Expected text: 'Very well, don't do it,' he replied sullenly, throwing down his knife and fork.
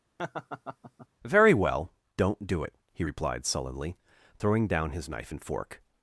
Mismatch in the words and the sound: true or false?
true